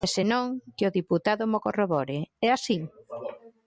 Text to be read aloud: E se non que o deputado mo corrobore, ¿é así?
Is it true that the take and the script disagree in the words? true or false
false